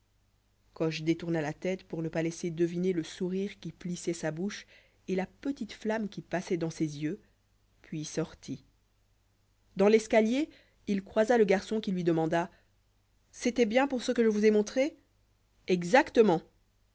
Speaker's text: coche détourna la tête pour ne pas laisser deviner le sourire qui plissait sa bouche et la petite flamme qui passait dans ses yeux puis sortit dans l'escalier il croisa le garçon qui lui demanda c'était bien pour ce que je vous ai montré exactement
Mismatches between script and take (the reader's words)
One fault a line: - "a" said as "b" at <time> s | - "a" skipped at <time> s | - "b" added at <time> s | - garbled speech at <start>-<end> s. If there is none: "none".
none